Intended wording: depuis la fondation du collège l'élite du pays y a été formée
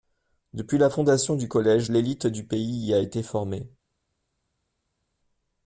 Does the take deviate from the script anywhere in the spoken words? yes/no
no